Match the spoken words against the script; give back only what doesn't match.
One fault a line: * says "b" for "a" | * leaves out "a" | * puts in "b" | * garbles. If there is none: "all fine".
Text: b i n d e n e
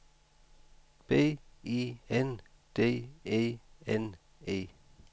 all fine